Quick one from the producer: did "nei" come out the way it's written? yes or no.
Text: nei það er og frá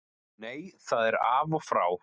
yes